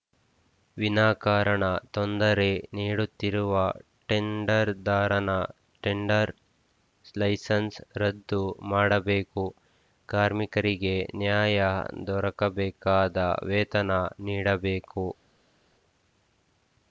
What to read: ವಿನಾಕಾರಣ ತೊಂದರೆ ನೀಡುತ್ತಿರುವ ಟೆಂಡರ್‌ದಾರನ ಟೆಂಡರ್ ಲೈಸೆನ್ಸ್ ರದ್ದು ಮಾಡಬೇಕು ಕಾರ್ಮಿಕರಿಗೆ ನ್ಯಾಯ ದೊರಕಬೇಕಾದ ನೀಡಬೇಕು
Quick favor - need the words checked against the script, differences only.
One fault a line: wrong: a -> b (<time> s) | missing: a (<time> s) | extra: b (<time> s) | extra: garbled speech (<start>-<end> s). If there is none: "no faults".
extra: ವೇತನ (13.5 s)